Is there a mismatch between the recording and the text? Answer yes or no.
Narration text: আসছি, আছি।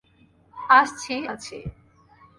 no